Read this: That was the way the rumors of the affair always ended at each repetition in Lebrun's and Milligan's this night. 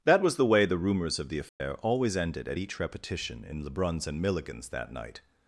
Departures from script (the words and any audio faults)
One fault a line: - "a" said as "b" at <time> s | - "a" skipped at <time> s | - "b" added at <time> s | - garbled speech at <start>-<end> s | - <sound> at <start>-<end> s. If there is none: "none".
- dropout at 1.5-1.6 s
- "this" said as "that" at 4.7 s